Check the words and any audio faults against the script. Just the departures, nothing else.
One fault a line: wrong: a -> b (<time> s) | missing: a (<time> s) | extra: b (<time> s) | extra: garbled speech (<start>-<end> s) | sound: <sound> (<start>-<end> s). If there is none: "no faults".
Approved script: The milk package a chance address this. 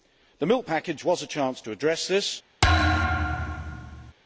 extra: was (1.0 s)
extra: to (1.6 s)
sound: thud (2.6-4.1 s)